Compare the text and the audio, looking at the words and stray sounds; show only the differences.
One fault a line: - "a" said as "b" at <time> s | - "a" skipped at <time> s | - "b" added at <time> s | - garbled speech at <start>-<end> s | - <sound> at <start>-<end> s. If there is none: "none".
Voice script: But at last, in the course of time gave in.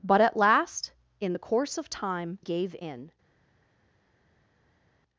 none